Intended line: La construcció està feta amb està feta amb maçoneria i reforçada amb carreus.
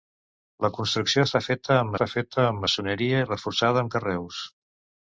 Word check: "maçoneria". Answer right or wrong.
right